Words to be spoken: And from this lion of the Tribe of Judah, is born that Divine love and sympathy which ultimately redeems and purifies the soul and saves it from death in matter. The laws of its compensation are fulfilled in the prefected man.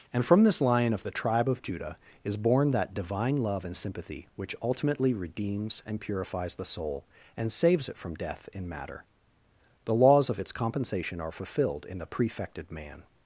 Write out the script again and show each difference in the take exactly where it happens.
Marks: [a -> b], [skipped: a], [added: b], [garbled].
And from this lion of the Tribe of Judah, is born that Divine love and sympathy which ultimately redeems and purifies the soul and saves it from death in matter. The laws of its compensation are fulfilled in the prefected man.